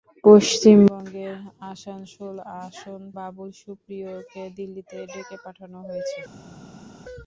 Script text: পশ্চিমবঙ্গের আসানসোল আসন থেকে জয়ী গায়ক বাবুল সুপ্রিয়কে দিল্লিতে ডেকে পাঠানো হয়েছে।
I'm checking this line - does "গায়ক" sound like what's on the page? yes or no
no